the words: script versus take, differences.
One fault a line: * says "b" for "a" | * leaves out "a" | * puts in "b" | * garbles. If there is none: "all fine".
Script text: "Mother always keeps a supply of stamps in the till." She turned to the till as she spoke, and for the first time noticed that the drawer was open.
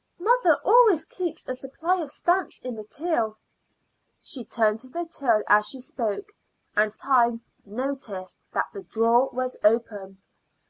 * leaves out "for the first"